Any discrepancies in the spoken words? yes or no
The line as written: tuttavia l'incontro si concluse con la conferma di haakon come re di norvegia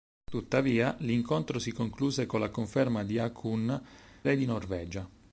yes